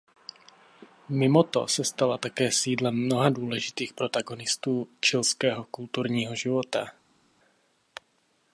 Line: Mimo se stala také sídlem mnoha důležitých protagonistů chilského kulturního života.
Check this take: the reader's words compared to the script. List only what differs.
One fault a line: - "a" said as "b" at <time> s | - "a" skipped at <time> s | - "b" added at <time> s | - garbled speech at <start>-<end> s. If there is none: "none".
- "to" added at 1.4 s